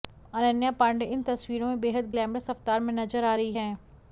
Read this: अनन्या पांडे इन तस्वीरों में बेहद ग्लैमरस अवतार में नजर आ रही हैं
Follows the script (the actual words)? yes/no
yes